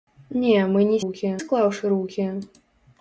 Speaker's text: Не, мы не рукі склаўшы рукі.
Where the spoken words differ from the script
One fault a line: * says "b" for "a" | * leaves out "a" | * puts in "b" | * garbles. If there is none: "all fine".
all fine